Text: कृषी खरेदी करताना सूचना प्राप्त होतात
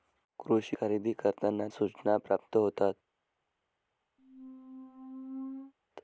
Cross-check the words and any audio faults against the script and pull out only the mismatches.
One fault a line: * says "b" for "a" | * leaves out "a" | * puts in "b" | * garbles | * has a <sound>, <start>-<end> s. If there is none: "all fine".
* has a squeak, 4.2-5.7 s